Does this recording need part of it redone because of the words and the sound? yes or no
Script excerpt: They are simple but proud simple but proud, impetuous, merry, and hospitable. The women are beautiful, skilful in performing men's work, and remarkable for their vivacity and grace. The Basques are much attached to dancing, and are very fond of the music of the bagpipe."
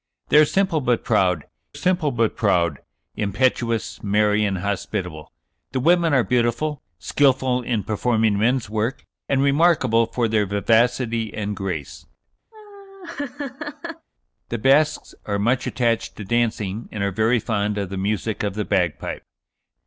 yes